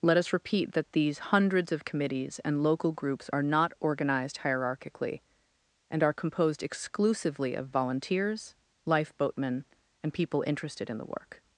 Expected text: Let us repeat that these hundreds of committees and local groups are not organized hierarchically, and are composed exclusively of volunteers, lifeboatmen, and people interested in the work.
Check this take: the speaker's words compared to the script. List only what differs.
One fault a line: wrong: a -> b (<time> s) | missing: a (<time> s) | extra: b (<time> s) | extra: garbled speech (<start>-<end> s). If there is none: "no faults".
no faults